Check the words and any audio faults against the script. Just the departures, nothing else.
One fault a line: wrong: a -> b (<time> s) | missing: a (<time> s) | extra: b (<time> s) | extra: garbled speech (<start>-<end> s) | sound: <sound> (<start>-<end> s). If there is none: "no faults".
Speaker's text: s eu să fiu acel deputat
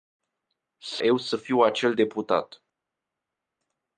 no faults